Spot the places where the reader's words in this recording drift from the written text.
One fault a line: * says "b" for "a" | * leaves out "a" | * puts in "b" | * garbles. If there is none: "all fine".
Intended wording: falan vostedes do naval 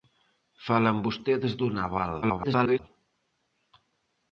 * garbles